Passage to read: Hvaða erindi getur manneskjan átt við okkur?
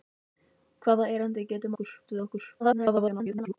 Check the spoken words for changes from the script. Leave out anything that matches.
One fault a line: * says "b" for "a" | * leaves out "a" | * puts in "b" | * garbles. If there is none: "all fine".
* says "okkur" for "manneskjan"
* garbles